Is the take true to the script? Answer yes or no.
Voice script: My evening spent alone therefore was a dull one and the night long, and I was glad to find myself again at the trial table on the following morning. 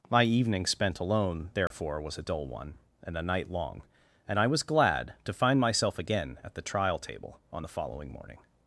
no